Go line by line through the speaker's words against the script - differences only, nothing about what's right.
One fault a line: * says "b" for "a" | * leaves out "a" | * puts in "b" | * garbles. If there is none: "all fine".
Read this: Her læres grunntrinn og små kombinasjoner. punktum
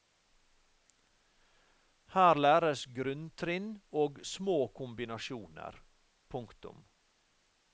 all fine